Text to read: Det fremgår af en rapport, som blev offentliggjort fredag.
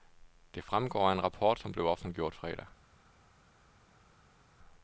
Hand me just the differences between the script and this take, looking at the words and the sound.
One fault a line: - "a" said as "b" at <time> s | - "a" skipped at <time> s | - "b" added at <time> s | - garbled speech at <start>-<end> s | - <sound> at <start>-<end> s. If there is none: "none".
none